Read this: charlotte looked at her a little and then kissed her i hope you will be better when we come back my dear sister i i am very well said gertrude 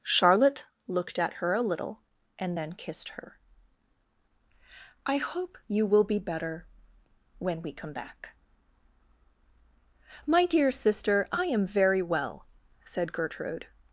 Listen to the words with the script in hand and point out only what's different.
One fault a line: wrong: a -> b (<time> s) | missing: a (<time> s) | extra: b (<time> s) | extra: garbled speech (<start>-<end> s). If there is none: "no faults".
missing: i (11.4 s)